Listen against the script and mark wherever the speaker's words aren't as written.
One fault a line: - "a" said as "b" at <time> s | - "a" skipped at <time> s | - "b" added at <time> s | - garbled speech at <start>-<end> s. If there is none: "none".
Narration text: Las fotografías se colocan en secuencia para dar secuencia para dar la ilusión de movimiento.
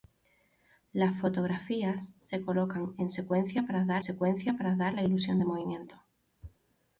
none